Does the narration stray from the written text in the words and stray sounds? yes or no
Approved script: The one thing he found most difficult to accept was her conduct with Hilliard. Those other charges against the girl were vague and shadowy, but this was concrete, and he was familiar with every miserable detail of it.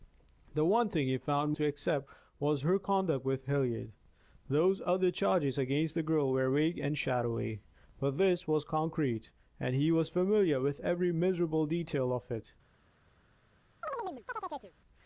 yes